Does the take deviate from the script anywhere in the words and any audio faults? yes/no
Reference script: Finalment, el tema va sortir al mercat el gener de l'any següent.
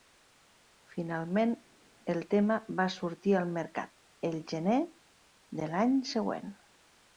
no